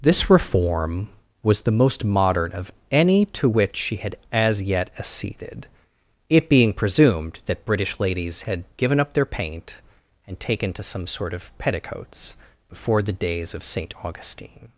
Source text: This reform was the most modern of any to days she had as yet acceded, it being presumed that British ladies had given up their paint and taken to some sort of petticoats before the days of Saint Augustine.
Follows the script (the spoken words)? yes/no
no